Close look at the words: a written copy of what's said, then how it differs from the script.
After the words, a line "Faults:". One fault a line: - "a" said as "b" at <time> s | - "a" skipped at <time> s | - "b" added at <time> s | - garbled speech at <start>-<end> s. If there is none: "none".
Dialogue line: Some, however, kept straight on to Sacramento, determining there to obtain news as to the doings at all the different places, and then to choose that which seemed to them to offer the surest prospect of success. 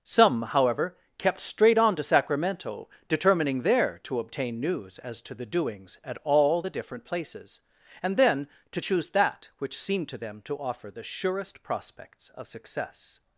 Some, however, kept straight on to Sacramento, determining there to obtain news as to the doings at all the different places, and then to choose that which seemed to them to offer the surest prospects of success.
Faults:
- "prospect" said as "prospects" at 11.6 s